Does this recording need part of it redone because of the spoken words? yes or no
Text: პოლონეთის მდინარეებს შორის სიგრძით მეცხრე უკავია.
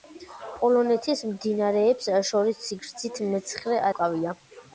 no